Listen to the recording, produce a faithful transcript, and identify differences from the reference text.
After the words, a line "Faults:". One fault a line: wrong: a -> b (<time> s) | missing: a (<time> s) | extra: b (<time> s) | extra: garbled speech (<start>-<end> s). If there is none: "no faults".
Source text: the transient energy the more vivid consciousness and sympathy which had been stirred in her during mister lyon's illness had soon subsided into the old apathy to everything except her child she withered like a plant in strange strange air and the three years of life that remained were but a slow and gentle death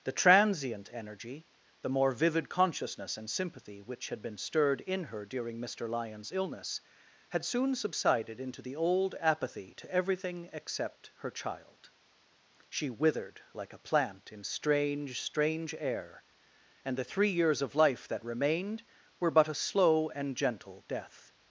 the transient energy the more vivid consciousness and sympathy which had been stirred in her during mister lyon's illness had soon subsided into the old apathy to everything except her child she withered like a plant in strange strange air and the three years of life that remained were but a slow and gentle death
Faults:
no faults